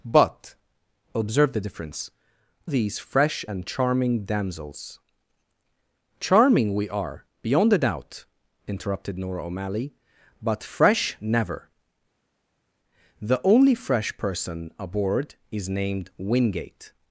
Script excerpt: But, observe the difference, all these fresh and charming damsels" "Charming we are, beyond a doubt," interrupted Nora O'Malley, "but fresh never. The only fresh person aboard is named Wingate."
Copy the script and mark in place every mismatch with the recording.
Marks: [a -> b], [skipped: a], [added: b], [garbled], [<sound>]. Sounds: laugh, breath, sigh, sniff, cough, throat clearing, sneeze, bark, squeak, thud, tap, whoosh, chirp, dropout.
But, observe the difference, [skipped: all] these fresh and charming damsels" "Charming we are, beyond a doubt," interrupted Nora O'Malley, "but fresh never. The only fresh person aboard is named Wingate."